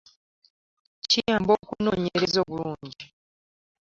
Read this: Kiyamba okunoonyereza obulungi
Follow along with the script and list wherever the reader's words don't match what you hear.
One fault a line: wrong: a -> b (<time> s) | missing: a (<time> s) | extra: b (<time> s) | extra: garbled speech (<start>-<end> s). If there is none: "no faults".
no faults